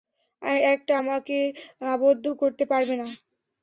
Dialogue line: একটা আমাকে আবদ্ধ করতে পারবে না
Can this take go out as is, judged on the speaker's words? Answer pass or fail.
pass